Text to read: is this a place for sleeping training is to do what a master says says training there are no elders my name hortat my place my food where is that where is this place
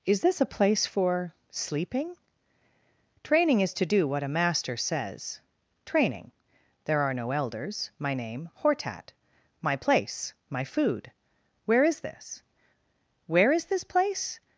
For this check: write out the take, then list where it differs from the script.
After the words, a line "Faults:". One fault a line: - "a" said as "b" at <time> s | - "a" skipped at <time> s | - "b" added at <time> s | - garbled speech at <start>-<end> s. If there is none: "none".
is this a place for sleeping training is to do what a master says training there are no elders my name hortat my place my food where is this where is this place
Faults:
- "says" skipped at 5.4 s
- "that" said as "this" at 12.0 s